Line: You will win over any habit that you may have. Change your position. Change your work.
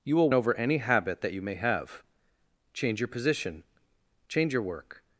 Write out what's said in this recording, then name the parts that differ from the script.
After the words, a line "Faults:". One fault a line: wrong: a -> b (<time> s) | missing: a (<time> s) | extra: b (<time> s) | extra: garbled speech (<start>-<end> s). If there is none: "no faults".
You will over any habit that you may have. Change your position. Change your work.
Faults:
missing: win (0.3 s)